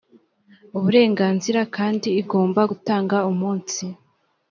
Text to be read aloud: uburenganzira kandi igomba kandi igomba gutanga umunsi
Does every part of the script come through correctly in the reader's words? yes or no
no